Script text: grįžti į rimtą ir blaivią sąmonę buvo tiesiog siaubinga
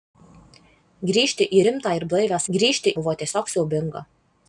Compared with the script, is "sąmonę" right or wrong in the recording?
wrong